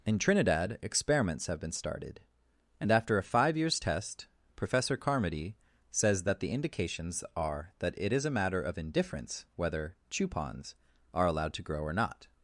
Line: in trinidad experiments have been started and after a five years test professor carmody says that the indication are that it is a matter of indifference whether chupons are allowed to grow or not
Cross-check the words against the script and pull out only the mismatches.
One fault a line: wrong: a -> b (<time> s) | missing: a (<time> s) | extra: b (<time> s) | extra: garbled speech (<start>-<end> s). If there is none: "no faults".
wrong: indication -> indications (6.5 s)